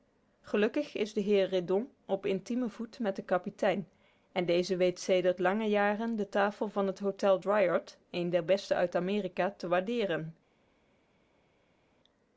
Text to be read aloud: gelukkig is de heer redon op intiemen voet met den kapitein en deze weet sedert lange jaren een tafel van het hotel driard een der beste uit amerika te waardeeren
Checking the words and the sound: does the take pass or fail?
fail